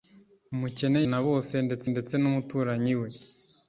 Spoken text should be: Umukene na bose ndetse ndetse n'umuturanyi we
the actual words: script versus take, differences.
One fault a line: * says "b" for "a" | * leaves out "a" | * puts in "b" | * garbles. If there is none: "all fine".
all fine